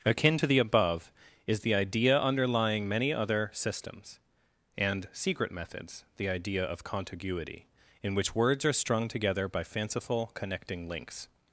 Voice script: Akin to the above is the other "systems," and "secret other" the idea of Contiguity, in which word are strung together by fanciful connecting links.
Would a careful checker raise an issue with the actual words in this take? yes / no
yes